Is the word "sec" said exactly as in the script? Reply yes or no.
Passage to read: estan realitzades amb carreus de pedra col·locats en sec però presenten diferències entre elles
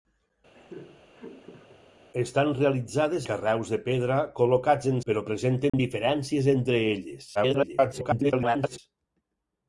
no